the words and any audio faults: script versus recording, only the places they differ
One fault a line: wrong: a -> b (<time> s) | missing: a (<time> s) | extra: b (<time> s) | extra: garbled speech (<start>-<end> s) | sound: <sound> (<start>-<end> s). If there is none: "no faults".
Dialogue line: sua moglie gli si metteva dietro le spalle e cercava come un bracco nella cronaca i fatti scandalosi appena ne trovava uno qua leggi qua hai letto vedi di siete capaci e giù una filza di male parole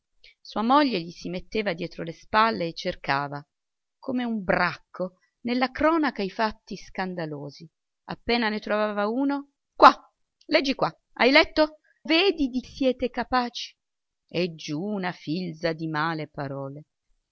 no faults